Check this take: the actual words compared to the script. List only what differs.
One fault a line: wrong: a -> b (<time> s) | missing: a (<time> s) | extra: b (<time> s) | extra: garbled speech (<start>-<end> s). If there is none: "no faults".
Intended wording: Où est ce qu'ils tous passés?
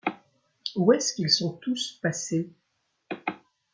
extra: sont (1.3 s)